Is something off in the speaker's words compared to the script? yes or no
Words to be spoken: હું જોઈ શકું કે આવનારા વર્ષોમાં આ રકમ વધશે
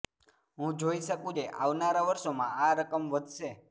no